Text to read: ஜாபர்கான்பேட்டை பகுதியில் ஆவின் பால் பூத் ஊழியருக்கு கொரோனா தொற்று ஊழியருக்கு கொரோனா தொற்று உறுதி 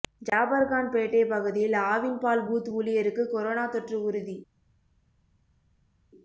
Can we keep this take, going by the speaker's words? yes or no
no